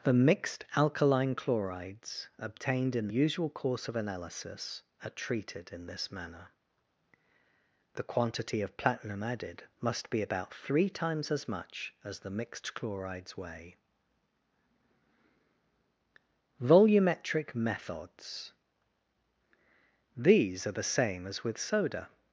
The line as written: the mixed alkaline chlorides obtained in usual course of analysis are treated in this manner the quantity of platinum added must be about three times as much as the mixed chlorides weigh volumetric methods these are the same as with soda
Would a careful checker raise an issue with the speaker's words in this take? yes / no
no